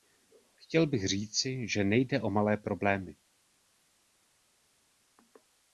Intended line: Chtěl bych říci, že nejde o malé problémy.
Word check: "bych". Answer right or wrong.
right